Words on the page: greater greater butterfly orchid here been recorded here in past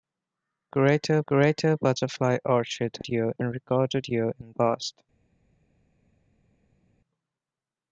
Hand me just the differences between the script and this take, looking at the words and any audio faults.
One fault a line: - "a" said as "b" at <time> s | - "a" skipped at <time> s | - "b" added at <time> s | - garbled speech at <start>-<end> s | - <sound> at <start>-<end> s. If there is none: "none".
none